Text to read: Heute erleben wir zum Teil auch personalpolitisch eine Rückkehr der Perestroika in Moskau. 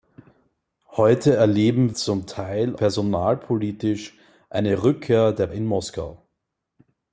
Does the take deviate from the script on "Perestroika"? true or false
true